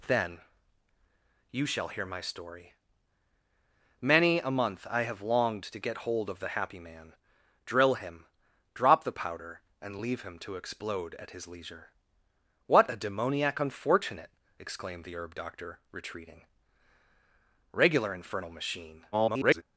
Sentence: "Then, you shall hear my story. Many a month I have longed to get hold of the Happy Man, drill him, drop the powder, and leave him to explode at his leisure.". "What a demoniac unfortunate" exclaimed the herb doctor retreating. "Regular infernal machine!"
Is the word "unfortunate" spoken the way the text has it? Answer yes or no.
yes